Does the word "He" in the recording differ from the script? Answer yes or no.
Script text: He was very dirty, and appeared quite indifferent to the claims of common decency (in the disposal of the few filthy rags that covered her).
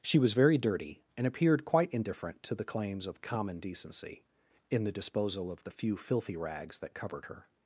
yes